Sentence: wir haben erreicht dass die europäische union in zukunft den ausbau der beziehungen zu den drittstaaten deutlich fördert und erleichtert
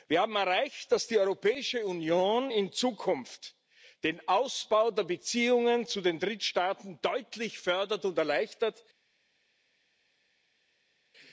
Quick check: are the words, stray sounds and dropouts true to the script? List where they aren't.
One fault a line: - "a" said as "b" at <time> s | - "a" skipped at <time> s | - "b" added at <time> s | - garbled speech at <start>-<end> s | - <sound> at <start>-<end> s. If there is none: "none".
none